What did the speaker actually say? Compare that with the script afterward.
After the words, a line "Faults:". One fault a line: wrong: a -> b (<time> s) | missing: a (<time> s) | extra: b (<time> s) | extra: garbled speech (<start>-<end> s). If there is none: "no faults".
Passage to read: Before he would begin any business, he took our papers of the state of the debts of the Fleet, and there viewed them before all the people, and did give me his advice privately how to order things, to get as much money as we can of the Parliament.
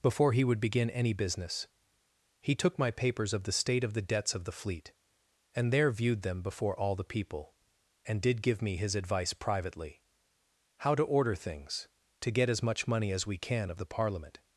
Before he would begin any business, he took my papers of the state of the debts of the Fleet, and there viewed them before all the people, and did give me his advice privately how to order things, to get as much money as we can of the Parliament.
Faults:
wrong: our -> my (2.8 s)